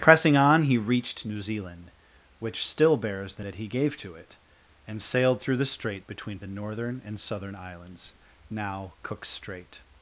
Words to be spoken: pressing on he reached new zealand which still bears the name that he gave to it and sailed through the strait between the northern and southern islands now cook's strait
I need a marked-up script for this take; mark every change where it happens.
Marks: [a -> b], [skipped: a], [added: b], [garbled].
pressing on he reached new zealand which still bears the [skipped: name] that he gave to it and sailed through the strait between the northern and southern islands now cook's strait